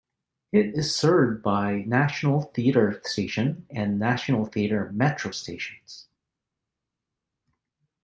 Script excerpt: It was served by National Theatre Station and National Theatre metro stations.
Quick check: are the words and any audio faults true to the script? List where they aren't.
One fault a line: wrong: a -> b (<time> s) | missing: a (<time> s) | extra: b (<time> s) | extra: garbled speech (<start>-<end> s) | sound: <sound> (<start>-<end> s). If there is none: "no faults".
wrong: was -> is (0.7 s)